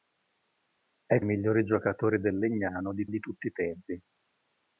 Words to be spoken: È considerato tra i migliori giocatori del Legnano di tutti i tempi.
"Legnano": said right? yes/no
yes